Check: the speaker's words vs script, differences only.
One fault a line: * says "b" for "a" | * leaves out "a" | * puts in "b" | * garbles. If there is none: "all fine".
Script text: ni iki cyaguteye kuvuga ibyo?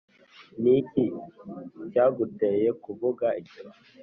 all fine